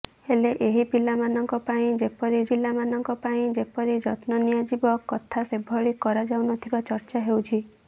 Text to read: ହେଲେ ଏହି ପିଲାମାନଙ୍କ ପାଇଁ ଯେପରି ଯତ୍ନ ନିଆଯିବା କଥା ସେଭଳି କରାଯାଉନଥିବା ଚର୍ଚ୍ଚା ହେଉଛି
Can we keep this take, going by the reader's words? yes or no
no